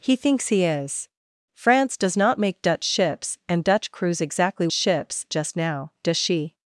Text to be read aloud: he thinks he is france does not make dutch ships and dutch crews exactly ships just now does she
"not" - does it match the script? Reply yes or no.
yes